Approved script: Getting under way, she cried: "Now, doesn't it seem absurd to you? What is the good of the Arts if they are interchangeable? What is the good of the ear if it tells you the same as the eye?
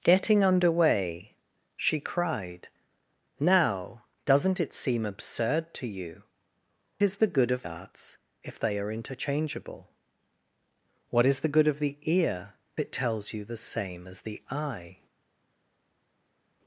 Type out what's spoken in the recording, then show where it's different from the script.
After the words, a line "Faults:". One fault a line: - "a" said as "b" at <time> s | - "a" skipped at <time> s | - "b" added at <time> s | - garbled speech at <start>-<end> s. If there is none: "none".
Getting under way, she cried: "Now, doesn't it seem absurd to you? Is the good of Arts if they are interchangeable? What is the good of the ear it tells you the same as the eye?
Faults:
- "What" skipped at 6.2 s
- "the" skipped at 7.7 s
- "if" skipped at 12.5 s